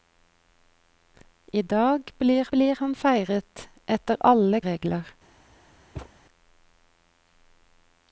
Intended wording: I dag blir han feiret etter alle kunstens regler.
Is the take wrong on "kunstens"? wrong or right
wrong